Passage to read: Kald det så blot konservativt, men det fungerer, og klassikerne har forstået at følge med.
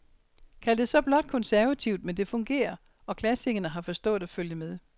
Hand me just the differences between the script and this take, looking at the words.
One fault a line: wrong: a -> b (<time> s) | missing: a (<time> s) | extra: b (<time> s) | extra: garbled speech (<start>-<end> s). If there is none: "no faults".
no faults